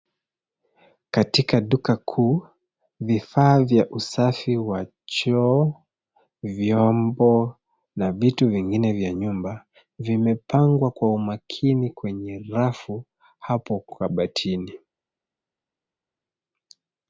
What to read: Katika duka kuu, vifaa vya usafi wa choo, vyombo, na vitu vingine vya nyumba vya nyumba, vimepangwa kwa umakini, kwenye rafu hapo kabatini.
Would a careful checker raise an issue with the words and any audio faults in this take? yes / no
yes